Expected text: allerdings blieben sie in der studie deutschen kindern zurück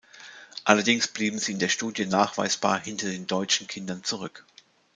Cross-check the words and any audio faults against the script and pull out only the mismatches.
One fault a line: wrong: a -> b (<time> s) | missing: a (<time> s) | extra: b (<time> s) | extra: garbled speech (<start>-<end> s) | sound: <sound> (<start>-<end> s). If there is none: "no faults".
extra: nachweisbar hinter den (2.1 s)